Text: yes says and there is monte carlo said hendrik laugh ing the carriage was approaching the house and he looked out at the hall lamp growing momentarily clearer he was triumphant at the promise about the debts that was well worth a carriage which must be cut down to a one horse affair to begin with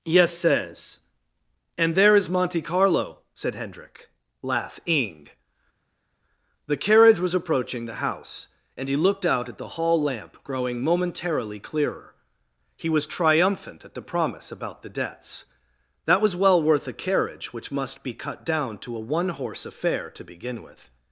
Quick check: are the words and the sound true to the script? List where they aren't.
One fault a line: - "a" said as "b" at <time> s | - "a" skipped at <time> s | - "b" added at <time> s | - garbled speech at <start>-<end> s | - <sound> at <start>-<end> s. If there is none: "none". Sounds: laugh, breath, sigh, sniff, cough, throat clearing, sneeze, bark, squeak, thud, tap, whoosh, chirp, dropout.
none